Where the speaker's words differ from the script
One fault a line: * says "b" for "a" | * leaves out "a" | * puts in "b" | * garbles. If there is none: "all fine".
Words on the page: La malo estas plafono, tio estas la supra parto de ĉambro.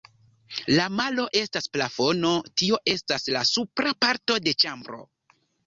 all fine